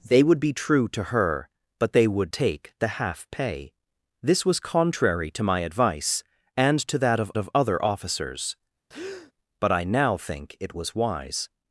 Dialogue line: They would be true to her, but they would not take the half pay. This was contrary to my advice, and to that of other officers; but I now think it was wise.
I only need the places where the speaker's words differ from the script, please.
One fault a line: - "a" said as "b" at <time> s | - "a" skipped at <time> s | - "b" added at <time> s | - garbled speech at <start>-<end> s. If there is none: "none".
- "not" skipped at 2.3 s
- "of" added at 7.4 s